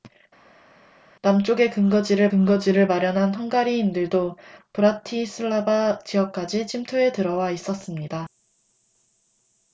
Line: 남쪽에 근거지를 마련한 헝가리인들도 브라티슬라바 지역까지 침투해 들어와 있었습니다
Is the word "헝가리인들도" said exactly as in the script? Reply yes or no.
yes